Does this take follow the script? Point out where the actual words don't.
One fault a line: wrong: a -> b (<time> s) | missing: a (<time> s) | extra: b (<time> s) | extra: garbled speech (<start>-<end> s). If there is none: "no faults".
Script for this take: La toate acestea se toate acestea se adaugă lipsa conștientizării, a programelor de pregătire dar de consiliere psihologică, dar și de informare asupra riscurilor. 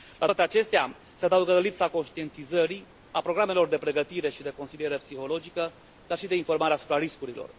missing: toate acestea se (1.2 s)
wrong: dar -> și (4.3 s)